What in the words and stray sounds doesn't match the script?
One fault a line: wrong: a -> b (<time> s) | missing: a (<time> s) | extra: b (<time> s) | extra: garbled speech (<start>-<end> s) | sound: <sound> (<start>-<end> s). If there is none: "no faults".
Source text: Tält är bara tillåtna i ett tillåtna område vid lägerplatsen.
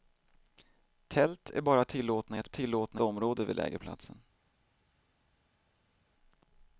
no faults